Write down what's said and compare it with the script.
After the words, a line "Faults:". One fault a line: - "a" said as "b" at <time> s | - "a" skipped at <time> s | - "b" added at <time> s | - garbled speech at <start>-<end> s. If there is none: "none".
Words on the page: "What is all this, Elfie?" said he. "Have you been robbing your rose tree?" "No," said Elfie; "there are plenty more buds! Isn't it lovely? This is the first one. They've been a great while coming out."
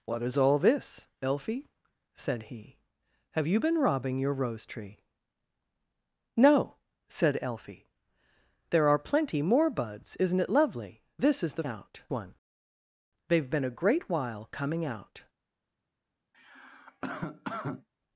"What is all this, Elfie?" said he. "Have you been robbing your rose tree?" "No," said Elfie; "there are plenty more buds! Isn't it lovely? This is the out one. They've been a great while coming out."
Faults:
- "first" said as "out" at 11.6 s